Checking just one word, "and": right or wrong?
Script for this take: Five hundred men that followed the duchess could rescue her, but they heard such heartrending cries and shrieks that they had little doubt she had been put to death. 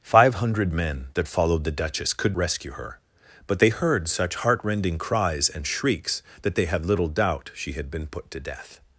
right